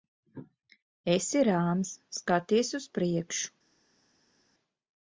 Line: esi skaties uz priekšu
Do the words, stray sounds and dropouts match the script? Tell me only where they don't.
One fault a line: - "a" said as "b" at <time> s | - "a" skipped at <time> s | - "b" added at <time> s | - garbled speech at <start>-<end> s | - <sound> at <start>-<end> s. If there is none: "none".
- "rāms" added at 1.5 s